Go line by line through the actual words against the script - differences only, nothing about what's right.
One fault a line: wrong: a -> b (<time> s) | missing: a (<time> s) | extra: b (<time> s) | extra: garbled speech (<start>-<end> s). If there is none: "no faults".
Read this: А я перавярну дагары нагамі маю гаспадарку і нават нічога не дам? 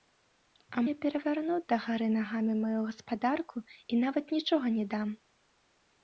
no faults